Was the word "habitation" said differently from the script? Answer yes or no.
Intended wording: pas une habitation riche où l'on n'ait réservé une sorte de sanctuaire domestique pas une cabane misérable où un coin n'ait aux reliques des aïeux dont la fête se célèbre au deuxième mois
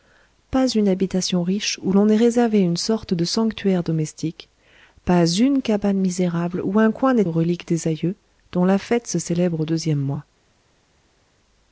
no